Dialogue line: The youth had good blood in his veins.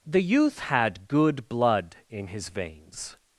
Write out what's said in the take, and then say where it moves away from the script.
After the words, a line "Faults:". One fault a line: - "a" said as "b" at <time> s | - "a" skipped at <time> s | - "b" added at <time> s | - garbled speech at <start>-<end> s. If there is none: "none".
The youth had good blood in his veins.
Faults:
none